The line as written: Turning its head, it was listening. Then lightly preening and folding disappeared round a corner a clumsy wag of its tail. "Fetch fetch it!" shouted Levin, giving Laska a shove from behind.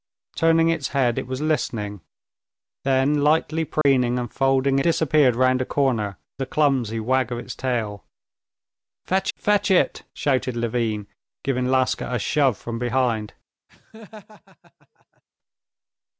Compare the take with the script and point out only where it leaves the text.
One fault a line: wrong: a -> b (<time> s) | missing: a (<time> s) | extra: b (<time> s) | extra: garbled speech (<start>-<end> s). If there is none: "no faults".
no faults